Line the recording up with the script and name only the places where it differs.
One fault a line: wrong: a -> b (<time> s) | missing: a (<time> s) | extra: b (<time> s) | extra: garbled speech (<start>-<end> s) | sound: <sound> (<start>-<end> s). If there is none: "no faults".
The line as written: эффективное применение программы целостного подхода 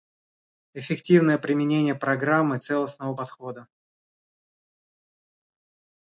no faults